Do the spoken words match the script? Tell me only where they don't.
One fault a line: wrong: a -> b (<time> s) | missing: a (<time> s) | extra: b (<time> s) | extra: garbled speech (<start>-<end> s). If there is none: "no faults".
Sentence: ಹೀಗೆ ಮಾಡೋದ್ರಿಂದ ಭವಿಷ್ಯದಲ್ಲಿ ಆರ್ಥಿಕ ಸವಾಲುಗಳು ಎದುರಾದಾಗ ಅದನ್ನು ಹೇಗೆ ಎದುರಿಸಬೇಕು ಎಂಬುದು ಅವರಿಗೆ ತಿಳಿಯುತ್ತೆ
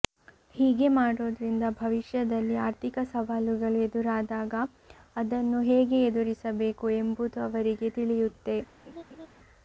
no faults